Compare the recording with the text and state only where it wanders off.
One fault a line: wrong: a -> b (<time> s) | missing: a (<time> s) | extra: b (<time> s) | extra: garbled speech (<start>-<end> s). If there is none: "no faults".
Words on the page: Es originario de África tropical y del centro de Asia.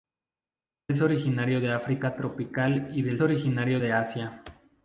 wrong: centro -> originario (3.2 s)